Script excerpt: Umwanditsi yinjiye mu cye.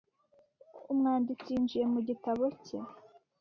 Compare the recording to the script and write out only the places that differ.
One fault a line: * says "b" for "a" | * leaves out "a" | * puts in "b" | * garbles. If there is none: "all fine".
* puts in "gitabo"